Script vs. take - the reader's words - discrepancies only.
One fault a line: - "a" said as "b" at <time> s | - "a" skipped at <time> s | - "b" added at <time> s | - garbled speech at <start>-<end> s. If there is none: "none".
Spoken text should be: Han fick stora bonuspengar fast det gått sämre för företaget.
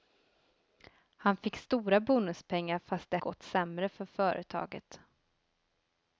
none